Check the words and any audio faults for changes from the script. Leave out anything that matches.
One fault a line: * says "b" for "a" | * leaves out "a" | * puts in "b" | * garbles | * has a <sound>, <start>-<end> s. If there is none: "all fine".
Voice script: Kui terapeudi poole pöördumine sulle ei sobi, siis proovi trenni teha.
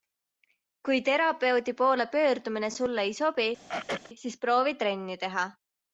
* has a throat clearing, 3.7-4.1 s